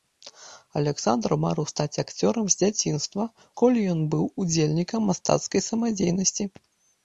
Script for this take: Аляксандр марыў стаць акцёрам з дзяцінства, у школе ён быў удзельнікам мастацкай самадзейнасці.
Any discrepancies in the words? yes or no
yes